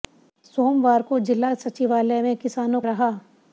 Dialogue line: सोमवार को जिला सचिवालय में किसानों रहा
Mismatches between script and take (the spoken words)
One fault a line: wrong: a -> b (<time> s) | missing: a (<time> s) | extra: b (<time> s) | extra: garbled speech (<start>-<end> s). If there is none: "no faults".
no faults